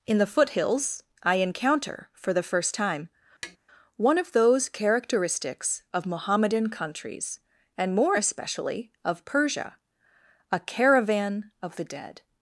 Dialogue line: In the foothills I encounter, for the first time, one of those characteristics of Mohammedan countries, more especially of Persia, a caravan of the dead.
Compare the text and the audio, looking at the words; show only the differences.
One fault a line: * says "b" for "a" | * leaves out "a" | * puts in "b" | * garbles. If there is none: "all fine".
* puts in "and"